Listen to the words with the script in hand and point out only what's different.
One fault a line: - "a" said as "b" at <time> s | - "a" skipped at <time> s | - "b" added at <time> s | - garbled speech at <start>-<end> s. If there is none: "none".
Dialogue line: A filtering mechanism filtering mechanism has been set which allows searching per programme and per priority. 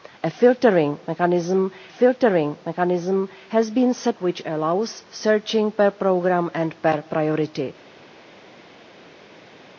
none